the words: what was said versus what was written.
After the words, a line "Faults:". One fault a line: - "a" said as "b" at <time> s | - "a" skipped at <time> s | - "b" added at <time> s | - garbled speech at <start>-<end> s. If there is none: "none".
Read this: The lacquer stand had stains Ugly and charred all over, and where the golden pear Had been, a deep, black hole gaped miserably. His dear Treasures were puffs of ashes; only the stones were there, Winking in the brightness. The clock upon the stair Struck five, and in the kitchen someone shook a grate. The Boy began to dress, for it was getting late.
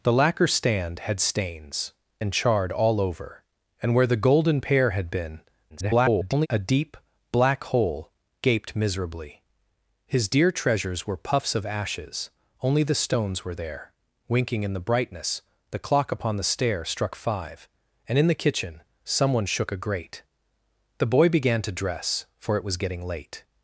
The lacquer stand had stains And charred all over, and where the golden pear Had been, [garbled] a deep, black hole gaped miserably. His dear Treasures were puffs of ashes; only the stones were there, Winking in the brightness. The clock upon the stair Struck five, and in the kitchen someone shook a grate. The Boy began to dress, for it was getting late.
Faults:
- "Ugly" skipped at 1.9 s
- garbled speech at 5.7-6.5 s